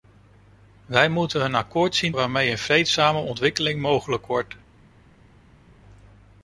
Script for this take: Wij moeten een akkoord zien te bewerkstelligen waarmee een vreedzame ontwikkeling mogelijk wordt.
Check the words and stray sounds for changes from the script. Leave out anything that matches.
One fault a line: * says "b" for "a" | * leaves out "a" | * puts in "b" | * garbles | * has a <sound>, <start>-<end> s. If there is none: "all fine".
* leaves out "te bewerkstelligen"